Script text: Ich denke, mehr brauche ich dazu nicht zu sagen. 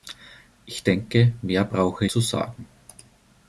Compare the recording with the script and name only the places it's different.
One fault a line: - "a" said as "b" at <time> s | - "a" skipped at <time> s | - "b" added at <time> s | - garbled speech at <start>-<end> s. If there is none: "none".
- "ich dazu nicht" skipped at 2.1 s